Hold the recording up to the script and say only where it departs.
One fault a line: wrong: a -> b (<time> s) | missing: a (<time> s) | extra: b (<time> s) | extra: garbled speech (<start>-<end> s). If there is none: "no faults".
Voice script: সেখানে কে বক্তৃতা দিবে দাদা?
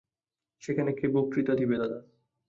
no faults